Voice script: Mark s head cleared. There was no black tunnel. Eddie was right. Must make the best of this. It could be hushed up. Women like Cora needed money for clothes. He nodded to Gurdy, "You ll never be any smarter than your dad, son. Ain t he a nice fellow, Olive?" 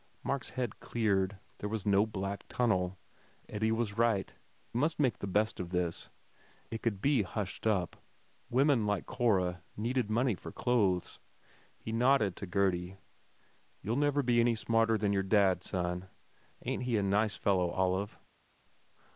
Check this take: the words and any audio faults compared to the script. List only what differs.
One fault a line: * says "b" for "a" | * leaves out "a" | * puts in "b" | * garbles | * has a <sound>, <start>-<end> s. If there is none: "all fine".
all fine